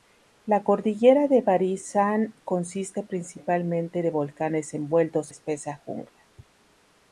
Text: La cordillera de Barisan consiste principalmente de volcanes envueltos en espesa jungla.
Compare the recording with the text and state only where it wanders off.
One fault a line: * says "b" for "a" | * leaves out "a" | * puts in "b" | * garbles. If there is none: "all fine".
* leaves out "en"